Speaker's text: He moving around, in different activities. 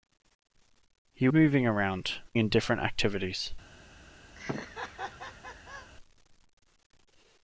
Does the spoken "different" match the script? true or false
true